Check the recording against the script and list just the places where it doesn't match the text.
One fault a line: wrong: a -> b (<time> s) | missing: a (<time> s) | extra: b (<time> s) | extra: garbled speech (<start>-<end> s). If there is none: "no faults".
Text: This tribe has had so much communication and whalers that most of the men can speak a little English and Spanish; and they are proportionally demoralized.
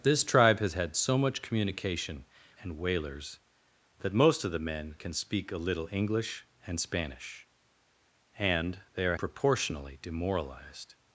no faults